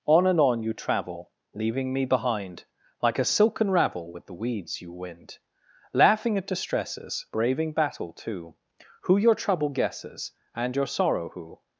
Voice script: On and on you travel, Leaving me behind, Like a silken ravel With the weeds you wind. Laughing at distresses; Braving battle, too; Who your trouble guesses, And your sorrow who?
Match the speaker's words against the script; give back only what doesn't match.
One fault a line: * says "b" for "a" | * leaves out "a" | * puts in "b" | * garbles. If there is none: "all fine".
all fine